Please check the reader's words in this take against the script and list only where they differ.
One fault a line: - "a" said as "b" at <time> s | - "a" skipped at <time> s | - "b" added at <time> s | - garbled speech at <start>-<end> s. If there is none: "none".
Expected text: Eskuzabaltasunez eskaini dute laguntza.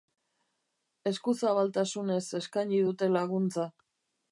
none